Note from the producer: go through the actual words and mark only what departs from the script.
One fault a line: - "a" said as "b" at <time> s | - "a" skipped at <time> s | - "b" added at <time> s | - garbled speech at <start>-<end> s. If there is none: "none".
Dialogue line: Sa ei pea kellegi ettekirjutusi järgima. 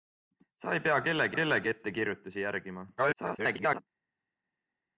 - "kellegi" added at 1.3 s
- garbled speech at 3.0-3.8 s